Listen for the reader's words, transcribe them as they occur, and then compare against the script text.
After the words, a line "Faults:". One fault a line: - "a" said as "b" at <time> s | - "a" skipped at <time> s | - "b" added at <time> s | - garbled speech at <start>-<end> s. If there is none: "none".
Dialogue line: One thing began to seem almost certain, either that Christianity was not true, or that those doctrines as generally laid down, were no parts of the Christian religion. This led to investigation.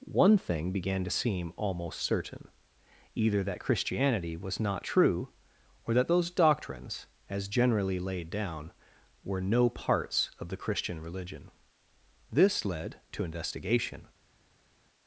One thing began to seem almost certain, either that Christianity was not true, or that those doctrines as generally laid down, were no parts of the Christian religion. This led to investigation.
Faults:
none